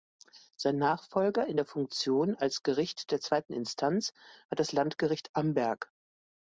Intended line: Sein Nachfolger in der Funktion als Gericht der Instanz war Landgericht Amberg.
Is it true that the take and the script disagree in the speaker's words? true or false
true